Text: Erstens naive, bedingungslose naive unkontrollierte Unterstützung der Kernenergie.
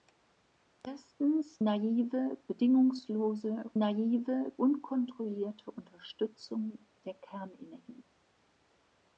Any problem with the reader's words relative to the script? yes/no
no